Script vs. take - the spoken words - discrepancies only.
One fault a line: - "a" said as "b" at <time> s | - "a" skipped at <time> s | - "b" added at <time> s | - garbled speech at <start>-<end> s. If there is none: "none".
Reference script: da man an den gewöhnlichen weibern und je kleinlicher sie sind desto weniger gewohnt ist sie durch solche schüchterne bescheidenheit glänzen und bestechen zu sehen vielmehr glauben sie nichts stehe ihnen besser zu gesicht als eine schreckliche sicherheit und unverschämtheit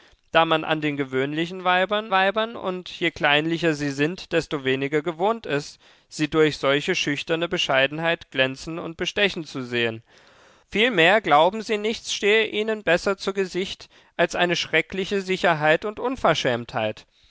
- "weibern" added at 2.1 s